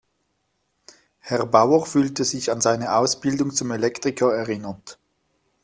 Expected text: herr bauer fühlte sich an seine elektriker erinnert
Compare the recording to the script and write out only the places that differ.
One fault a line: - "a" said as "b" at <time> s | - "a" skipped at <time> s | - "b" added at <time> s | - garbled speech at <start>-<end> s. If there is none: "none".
- "ausbildung zum" added at 3.0 s